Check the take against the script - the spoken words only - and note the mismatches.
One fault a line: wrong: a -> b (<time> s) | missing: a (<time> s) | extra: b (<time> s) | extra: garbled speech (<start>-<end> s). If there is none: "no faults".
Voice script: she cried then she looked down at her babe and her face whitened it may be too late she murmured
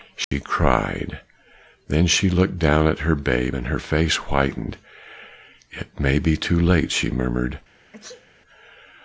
no faults